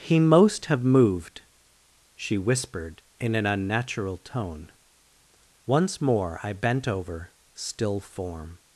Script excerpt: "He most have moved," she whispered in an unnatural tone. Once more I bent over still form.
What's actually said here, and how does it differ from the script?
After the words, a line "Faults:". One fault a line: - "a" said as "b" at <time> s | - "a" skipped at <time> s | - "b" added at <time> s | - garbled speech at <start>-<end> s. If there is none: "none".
"He most have moved," she whispered in an unnatural tone. Once more I bent over still form.
Faults:
none